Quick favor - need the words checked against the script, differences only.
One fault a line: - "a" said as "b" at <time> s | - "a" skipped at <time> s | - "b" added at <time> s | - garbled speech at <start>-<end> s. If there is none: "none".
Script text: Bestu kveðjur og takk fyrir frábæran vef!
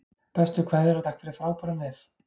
none